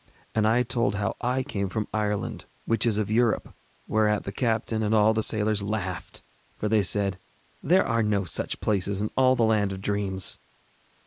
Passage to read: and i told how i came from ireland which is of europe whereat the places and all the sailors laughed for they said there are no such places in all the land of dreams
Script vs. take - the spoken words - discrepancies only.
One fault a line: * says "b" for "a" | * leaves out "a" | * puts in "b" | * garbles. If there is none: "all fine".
* says "captain" for "places"